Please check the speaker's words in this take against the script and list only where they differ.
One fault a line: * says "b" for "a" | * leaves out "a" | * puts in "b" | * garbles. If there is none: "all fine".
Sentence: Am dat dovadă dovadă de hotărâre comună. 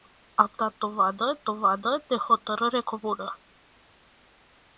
all fine